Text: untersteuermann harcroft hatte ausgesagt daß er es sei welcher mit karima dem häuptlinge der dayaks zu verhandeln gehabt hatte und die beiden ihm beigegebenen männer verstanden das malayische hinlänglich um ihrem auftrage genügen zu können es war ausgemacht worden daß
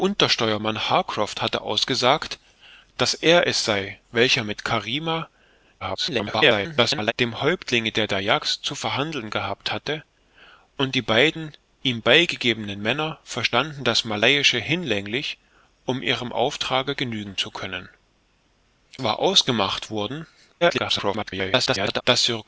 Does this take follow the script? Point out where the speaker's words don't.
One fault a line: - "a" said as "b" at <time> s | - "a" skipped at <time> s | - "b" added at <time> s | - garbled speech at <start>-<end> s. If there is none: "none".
- garbled speech at 5.8-7.1 s
- "es" skipped at 17.9 s
- garbled speech at 20.6-22.0 s